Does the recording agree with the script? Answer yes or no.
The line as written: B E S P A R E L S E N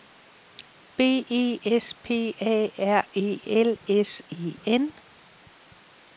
yes